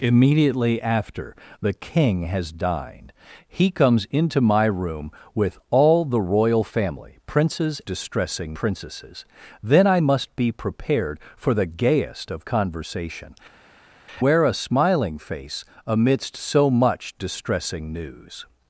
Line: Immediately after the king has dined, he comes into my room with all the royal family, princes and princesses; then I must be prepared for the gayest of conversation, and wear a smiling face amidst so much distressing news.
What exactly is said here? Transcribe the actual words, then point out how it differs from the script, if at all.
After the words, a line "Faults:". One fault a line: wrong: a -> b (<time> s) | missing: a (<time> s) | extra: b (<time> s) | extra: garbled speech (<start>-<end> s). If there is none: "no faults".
Immediately after the king has dined, he comes into my room with all the royal family, princes distressing princesses; then I must be prepared for the gayest of conversation, wear a smiling face amidst so much distressing news.
Faults:
wrong: and -> distressing (7.8 s)
missing: and (13.3 s)